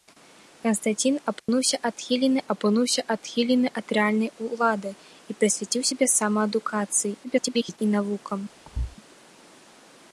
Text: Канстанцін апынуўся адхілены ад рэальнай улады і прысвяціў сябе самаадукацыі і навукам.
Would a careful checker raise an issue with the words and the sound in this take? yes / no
yes